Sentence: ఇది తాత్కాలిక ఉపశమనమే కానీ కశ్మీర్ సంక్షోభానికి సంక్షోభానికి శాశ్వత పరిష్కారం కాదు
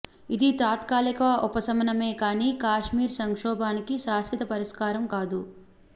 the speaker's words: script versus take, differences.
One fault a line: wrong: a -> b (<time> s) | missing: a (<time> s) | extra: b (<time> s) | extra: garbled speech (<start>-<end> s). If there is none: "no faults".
missing: సంక్షోభానికి (4.0 s)